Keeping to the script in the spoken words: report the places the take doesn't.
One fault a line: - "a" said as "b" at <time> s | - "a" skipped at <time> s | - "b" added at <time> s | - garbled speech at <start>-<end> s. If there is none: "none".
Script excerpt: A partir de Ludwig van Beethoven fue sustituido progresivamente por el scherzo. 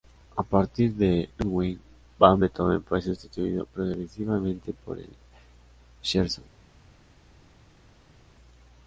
none